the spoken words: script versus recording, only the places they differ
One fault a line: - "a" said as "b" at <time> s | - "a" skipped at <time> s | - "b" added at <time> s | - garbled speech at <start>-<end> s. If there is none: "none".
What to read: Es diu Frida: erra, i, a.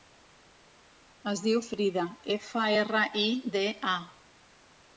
- "efa" added at 2.4 s
- "de" added at 3.6 s